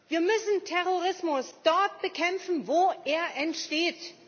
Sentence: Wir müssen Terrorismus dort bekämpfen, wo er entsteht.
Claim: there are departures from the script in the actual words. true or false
false